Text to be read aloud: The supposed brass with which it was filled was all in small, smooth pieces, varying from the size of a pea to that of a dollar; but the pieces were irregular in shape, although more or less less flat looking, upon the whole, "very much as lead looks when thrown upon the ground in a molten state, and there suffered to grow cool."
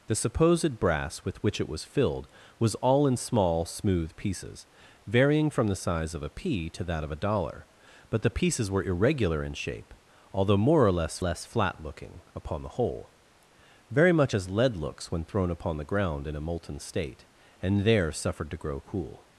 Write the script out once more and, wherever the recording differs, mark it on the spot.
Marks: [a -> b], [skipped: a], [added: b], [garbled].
The supposed brass with which it was filled was all in small, smooth pieces, varying from the size of a pea to that of a dollar; but the pieces were irregular in shape, although more or less less flat looking, upon the whole, "very much as lead looks when thrown upon the ground in a molten state, and there suffered to grow cool."